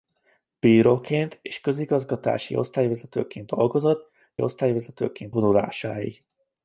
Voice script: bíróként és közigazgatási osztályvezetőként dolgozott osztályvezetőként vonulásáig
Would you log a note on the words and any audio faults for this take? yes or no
no